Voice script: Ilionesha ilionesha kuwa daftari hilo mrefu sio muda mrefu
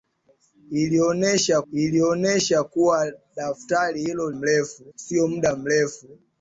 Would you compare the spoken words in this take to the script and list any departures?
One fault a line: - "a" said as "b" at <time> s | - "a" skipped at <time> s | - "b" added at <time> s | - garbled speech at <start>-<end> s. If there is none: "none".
none